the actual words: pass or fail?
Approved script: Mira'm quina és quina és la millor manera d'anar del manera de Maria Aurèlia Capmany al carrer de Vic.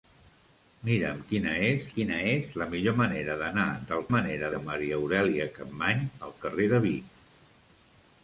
pass